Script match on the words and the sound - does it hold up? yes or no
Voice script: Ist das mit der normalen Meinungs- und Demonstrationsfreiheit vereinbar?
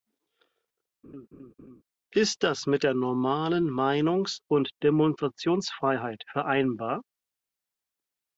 no